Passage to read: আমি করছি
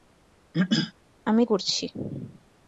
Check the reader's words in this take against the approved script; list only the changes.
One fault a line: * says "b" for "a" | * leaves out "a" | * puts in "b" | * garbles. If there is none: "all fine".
all fine